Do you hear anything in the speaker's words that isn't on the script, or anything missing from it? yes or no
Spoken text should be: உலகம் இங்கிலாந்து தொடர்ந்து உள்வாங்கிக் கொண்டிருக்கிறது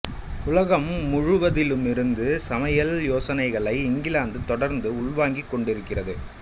yes